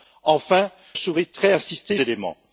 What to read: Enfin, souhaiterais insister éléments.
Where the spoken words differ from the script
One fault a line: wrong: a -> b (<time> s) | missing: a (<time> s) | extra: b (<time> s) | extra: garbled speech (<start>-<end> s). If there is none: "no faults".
no faults